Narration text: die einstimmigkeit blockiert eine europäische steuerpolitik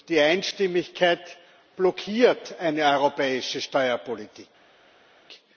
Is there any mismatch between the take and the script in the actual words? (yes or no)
no